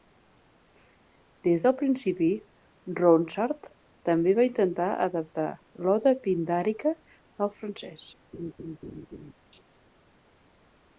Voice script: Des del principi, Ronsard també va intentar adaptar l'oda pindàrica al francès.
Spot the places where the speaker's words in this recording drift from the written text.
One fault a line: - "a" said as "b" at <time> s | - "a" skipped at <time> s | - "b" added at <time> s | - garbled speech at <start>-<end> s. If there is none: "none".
none